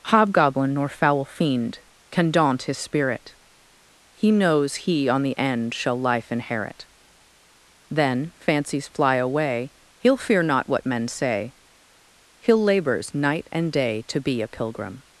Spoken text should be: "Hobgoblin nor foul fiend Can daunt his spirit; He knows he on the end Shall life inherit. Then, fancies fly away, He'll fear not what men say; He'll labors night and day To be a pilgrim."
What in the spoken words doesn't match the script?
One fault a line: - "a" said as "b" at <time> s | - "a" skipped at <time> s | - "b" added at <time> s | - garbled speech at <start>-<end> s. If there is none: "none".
none